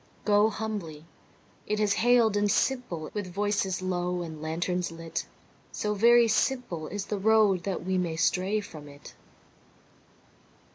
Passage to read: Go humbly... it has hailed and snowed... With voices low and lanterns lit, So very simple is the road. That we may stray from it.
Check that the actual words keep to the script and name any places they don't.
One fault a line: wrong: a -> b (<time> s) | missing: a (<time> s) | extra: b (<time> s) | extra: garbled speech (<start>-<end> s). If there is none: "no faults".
wrong: snowed -> simple (2.5 s)